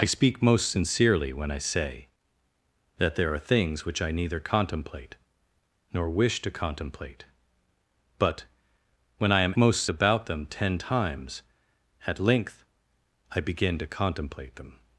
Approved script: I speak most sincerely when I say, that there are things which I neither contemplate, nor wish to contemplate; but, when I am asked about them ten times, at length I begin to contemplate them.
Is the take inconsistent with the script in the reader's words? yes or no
yes